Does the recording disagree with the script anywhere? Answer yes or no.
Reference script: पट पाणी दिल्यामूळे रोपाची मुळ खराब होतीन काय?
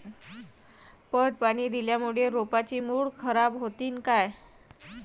no